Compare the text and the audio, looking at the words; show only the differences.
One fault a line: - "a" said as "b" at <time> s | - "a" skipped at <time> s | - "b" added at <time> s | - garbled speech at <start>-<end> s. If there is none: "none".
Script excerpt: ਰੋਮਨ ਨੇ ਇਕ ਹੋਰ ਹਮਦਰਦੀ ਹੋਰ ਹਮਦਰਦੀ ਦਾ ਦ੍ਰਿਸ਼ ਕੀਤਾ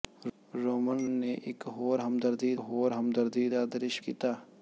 none